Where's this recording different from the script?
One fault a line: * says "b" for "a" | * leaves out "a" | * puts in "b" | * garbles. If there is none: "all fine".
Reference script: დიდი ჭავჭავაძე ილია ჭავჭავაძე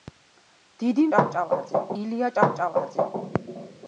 all fine